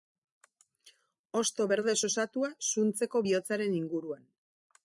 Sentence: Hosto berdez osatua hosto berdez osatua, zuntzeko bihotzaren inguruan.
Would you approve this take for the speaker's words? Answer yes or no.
no